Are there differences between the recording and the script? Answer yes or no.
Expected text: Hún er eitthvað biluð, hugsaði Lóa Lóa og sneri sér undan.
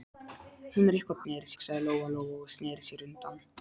yes